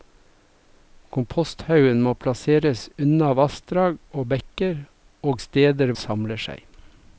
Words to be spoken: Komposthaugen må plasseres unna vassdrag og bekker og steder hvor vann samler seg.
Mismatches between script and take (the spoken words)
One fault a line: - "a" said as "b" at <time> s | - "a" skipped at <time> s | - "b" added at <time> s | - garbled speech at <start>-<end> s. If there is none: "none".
- "hvor vann" skipped at 6.0 s